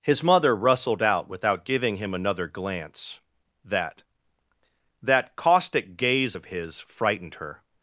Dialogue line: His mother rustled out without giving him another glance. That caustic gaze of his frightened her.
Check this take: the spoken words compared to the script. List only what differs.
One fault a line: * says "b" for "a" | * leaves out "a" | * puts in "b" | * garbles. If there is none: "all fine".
* puts in "That"